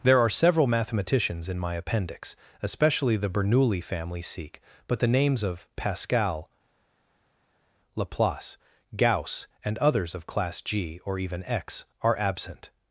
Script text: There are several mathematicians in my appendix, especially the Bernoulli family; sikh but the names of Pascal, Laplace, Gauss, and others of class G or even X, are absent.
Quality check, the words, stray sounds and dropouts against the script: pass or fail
pass